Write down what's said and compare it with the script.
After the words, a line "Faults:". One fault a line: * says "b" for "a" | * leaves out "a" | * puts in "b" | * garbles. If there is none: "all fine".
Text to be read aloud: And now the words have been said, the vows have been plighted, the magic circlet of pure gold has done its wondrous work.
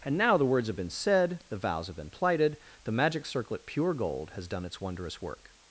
And now the words have been said, the vows have been plighted, the magic circlet pure gold has done its wondrous work.
Faults:
* leaves out "of"